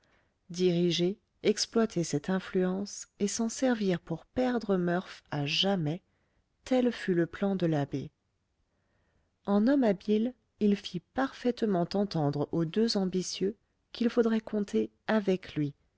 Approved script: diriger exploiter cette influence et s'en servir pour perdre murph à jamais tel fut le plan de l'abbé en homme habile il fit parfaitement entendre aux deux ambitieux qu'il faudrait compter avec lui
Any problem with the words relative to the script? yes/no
no